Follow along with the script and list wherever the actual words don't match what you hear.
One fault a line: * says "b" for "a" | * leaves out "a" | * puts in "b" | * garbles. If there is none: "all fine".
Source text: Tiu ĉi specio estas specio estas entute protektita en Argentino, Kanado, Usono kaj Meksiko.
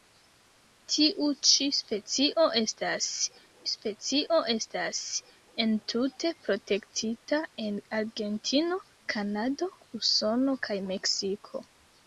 all fine